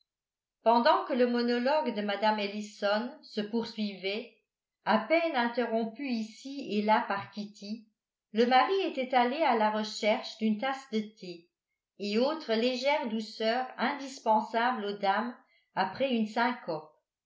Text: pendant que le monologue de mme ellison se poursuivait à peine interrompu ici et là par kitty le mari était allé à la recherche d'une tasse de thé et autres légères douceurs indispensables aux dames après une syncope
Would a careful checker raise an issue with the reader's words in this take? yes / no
no